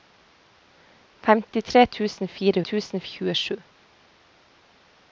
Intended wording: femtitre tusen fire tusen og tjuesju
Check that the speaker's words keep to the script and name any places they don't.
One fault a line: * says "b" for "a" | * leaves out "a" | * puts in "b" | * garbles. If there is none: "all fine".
all fine